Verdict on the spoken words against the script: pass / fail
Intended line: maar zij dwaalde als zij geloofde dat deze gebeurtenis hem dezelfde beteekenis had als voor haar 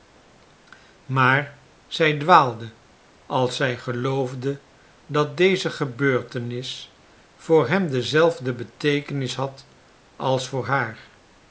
fail